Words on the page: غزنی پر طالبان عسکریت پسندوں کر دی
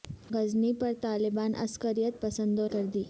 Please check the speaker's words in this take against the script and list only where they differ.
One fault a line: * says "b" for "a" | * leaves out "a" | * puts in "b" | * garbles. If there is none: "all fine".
all fine